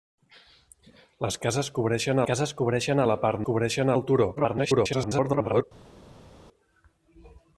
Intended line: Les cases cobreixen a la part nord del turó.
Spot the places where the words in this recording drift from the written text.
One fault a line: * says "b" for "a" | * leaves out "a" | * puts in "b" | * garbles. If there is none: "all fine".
* puts in "cases cobreixen"
* says "cobreixen" for "nord"
* garbles